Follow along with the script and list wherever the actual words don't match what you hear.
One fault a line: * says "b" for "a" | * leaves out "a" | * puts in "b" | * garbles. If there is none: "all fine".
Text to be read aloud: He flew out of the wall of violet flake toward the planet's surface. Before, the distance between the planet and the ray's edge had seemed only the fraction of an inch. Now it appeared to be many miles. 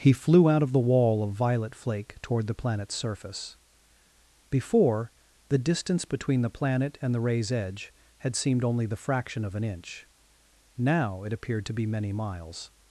all fine